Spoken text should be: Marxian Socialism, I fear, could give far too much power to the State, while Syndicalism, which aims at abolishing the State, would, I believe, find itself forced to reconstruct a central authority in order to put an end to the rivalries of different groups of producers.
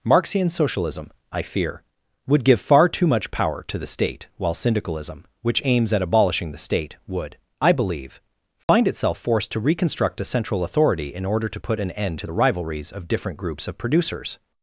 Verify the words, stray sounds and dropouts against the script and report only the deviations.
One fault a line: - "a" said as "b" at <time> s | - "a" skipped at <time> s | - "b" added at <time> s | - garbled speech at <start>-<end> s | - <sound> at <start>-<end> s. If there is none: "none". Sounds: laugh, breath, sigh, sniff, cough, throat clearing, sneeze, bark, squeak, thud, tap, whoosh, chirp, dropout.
- "could" said as "would" at 2.2 s
- dropout at 8.6-8.7 s